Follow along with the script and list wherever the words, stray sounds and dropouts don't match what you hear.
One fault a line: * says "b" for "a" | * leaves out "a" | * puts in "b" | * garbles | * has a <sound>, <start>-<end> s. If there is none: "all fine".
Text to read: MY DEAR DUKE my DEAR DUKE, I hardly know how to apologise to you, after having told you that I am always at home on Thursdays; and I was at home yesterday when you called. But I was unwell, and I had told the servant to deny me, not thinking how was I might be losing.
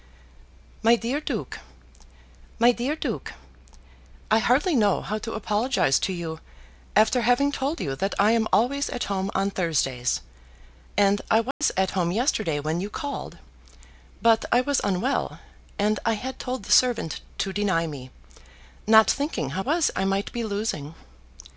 * has a dropout, 11.5-11.6 s